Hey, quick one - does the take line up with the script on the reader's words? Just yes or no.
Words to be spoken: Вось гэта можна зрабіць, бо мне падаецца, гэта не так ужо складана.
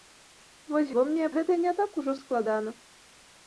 no